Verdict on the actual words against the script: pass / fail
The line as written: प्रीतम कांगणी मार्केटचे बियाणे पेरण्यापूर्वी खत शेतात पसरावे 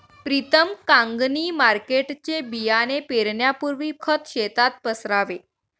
pass